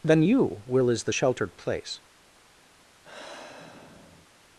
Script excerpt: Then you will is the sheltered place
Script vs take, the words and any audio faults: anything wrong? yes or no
yes